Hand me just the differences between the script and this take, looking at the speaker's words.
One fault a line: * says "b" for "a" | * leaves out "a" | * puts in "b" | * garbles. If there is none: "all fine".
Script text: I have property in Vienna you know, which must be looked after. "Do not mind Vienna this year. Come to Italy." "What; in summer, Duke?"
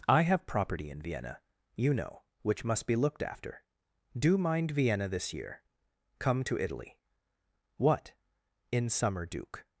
* leaves out "not"